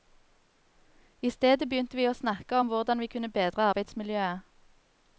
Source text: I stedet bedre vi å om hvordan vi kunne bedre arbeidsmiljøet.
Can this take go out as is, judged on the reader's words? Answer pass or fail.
fail